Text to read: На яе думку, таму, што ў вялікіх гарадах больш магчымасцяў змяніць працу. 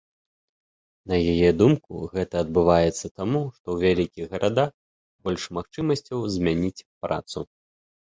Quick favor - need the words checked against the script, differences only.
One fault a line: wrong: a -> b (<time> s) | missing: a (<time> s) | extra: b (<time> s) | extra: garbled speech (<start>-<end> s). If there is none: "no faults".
extra: гэта адбываецца (2.1 s)